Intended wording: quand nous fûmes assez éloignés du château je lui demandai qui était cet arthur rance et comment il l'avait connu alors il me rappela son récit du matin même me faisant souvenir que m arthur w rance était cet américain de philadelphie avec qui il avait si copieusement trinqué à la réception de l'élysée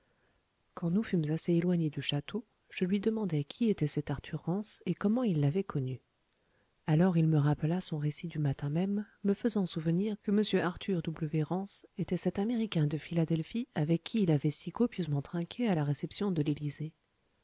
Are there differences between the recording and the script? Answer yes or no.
no